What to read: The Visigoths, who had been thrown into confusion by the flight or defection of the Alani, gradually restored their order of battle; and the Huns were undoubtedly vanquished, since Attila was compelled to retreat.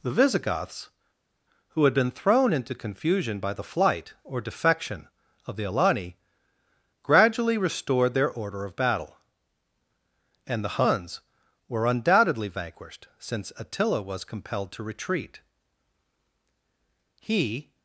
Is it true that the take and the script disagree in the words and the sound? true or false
true